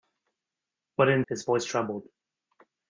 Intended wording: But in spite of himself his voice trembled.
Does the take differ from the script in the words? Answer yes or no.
yes